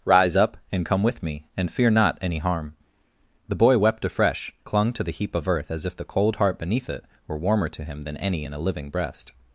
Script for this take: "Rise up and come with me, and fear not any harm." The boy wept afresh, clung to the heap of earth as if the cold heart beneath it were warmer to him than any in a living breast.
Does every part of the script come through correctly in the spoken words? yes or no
yes